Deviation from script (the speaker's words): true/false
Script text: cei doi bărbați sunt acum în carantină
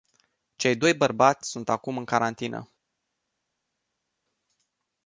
false